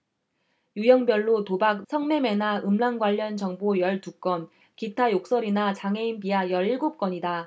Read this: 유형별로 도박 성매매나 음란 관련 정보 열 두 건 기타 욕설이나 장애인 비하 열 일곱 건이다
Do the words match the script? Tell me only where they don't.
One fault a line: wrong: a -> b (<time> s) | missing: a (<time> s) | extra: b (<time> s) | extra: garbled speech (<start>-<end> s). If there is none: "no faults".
no faults